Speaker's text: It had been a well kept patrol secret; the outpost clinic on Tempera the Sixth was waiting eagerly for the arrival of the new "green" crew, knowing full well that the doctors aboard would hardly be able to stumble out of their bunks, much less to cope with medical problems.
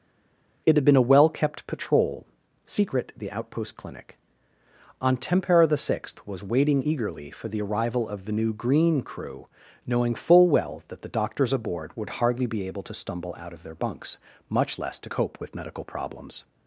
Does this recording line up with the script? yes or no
yes